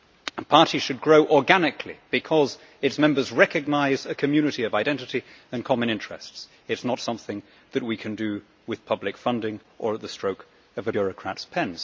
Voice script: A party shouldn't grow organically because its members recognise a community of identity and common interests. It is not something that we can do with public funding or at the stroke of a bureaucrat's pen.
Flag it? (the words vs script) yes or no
yes